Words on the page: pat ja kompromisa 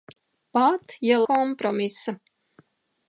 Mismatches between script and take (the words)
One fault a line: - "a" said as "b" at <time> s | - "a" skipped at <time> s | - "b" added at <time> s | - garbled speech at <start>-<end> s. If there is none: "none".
none